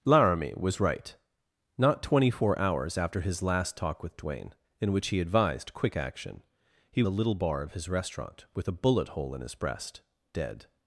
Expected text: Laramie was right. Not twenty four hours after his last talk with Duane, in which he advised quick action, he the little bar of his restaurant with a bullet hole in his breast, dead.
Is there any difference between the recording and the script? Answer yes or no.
no